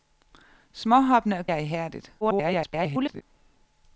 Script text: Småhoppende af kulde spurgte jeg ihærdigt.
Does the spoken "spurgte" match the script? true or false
false